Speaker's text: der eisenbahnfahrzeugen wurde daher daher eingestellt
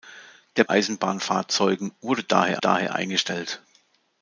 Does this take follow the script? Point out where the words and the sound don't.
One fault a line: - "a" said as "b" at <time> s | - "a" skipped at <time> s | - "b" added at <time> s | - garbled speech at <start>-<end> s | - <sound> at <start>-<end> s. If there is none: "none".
none